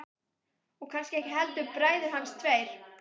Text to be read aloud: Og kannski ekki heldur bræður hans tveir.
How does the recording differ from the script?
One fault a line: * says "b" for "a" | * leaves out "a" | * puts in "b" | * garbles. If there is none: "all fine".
all fine